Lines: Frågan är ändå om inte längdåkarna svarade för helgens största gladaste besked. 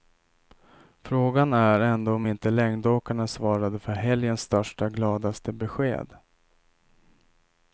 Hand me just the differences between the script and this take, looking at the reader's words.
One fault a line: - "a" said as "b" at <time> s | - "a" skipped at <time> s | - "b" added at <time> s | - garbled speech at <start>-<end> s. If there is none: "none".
none